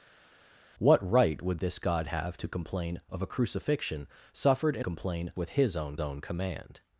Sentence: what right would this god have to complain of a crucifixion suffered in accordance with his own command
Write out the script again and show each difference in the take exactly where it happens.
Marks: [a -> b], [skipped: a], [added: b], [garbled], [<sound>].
what right would this god have to complain of a crucifixion suffered in [accordance -> complain] with his own [added: own] command